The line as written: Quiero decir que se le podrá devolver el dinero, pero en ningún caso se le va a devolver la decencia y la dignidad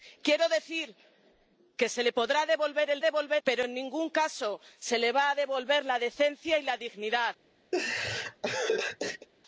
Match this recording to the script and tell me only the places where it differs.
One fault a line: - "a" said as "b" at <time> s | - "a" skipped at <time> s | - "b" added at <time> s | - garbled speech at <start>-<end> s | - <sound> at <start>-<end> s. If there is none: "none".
- "dinero" said as "devolver" at 3.0 s
- laugh at 7.7-9.3 s